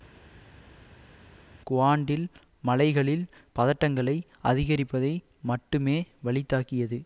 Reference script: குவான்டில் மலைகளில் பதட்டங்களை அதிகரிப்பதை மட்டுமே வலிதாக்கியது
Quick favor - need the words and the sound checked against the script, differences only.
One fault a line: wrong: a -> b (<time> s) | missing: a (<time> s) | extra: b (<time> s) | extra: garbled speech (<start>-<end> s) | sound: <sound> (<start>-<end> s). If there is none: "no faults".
no faults